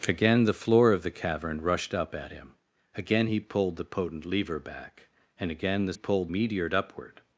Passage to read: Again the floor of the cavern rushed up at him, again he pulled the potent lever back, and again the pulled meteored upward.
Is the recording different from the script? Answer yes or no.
no